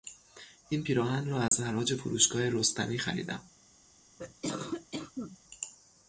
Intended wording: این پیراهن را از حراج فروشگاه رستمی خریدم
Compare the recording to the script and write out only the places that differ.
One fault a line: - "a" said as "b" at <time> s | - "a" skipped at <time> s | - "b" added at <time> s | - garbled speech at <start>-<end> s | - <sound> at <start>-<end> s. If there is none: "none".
- dropout at 1.5-1.5 s
- cough at 4.2-5.4 s